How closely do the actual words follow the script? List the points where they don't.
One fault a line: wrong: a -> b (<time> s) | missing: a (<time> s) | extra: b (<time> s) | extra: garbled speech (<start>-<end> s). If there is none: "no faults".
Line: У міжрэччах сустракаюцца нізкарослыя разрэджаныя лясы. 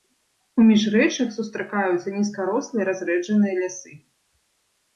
no faults